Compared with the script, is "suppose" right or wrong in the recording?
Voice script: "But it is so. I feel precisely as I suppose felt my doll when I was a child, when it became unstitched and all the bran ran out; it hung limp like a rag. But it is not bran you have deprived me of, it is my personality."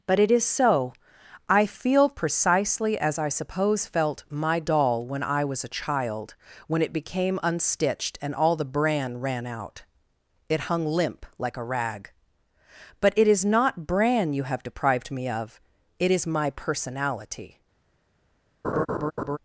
right